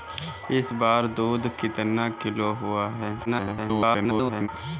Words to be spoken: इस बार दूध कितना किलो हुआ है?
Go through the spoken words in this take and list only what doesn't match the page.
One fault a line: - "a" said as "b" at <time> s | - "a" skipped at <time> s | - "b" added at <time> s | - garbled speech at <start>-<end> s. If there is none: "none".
- garbled speech at 3.3-4.5 s